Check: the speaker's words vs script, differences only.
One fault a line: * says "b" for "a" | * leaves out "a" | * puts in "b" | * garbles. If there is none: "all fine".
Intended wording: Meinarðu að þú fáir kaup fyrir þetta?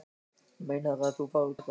* leaves out "kaup fyrir"